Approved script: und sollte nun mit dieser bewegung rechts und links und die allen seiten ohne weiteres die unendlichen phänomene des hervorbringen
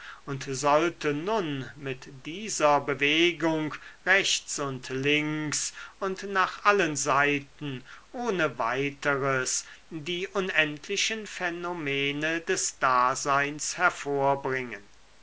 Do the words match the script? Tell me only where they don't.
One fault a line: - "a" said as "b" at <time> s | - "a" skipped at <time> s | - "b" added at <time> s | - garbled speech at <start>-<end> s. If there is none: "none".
- "die" said as "nach" at 6.2 s
- "daseins" added at 12.8 s